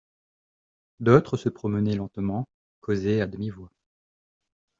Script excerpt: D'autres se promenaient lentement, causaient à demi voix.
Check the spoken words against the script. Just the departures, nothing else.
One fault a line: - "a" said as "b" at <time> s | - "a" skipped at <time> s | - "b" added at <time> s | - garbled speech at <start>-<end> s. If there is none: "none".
none